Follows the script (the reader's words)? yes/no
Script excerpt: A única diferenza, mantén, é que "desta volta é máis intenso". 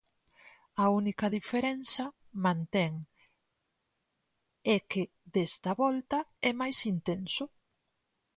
yes